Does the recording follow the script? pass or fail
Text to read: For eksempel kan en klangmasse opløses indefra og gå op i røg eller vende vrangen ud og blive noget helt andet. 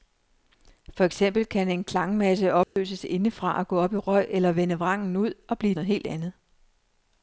pass